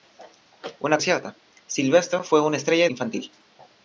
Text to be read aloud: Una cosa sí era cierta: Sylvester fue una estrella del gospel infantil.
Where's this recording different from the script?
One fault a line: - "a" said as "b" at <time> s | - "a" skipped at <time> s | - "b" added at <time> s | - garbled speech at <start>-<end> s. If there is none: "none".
- "cosa sí era" skipped at 1.0 s
- "del gospel" skipped at 2.9 s